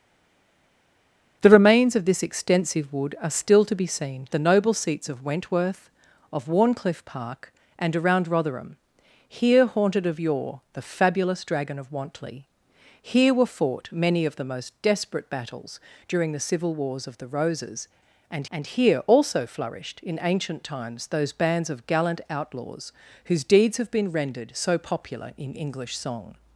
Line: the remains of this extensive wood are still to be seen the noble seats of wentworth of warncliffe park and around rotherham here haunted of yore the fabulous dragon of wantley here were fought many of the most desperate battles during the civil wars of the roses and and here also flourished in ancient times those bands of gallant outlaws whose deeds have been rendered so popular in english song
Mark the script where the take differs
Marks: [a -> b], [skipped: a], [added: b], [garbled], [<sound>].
the remains of this extensive wood are still to be seen the noble seats of wentworth of warncliffe park and around rotherham here haunted of yore the fabulous dragon of wantley here were fought many of the most desperate battles during the civil wars of the roses and and here also flourished in ancient times those bands of gallant outlaws whose deeds have been rendered so popular in english song